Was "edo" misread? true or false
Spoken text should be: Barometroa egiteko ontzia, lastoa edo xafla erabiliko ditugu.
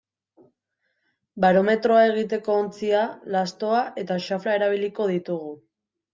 true